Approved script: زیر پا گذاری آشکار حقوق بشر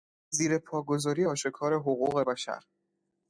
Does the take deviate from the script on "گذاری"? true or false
false